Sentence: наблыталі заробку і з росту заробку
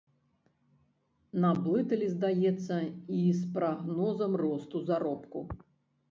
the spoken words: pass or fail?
fail